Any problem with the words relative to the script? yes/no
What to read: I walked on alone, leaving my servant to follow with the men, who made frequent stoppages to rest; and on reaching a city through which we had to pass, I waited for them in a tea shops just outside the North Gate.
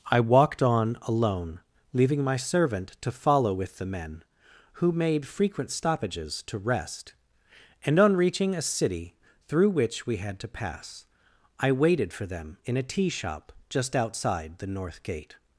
yes